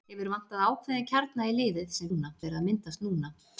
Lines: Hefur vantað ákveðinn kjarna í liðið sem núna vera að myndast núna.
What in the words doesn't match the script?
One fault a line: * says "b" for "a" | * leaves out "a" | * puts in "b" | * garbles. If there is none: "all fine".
all fine